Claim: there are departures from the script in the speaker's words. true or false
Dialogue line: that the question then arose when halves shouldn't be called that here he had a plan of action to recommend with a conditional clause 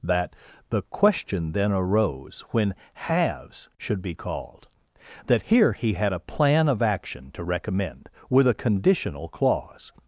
true